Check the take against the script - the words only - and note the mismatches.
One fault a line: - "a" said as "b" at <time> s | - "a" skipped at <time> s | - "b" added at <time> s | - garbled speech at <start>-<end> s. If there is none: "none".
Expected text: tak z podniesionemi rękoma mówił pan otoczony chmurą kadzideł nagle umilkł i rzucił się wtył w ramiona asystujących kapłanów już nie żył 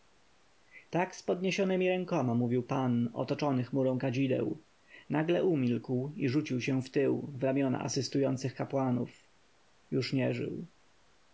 none